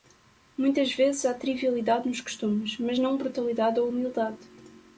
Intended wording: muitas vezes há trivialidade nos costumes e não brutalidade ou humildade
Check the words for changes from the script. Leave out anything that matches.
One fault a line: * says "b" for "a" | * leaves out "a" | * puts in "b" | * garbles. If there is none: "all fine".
* says "mas" for "e"